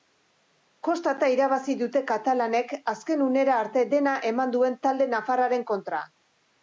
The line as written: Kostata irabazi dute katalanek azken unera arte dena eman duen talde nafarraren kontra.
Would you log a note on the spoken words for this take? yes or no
no